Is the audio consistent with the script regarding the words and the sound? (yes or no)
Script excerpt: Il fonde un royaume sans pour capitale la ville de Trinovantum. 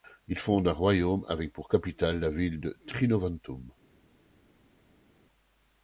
no